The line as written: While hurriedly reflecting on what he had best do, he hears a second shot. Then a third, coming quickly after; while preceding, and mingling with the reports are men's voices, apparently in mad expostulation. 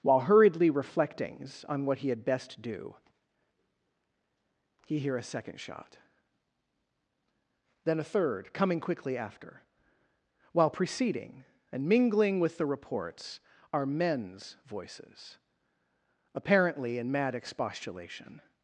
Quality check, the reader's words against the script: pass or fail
fail